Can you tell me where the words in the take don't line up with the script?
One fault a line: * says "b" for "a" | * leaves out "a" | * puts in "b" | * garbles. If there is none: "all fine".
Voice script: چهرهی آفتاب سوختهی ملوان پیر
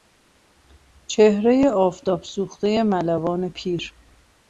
all fine